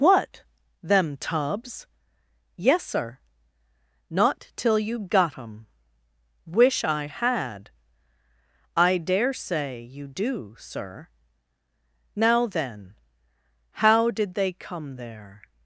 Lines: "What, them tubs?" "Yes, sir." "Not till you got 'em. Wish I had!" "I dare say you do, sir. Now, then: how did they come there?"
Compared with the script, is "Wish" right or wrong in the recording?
right